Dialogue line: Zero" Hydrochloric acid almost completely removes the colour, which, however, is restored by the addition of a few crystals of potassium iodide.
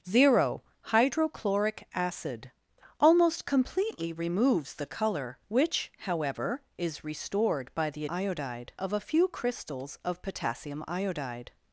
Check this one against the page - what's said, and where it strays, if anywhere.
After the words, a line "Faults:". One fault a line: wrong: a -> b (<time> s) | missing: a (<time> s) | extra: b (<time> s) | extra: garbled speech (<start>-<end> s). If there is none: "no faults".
Zero" Hydrochloric acid almost completely removes the colour, which, however, is restored by the iodide of a few crystals of potassium iodide.
Faults:
wrong: addition -> iodide (8.1 s)